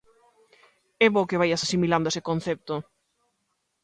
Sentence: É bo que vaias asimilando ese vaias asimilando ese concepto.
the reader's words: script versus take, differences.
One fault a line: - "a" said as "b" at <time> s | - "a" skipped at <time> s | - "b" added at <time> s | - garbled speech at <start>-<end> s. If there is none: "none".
- "vaias asimilando ese" skipped at 2.2 s